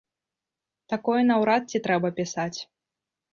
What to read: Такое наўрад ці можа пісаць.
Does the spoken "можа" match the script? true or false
false